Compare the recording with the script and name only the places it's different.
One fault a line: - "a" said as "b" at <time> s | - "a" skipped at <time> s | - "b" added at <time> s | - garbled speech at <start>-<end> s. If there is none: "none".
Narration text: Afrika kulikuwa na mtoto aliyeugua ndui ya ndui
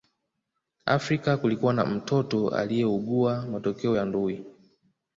- "ndui" said as "matokeo" at 3.5 s